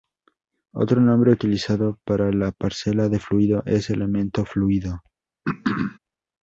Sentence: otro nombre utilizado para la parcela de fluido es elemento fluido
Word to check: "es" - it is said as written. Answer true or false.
true